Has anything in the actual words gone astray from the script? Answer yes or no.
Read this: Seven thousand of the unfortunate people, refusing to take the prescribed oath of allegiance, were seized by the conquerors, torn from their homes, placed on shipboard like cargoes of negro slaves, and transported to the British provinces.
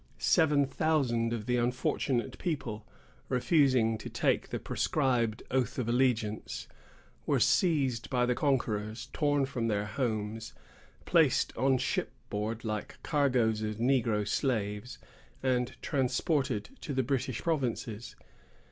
no